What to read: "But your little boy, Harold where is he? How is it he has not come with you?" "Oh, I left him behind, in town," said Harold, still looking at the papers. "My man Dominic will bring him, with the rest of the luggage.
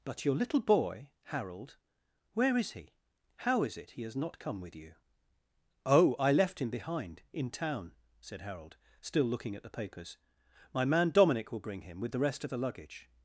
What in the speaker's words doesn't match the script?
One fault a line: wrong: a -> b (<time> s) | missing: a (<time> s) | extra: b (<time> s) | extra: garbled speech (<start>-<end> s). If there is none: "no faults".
no faults